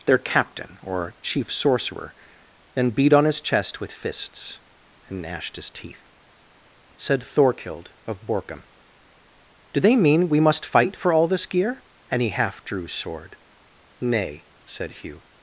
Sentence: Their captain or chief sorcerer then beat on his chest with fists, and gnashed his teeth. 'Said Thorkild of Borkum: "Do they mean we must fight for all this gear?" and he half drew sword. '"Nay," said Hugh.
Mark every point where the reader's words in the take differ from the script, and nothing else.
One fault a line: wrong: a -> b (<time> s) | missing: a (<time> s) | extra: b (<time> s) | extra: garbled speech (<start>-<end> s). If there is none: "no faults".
no faults